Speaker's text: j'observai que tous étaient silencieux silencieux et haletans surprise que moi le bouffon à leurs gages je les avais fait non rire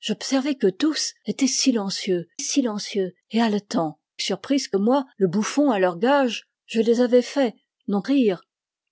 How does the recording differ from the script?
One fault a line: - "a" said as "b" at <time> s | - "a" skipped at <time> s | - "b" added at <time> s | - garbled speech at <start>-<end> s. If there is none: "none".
none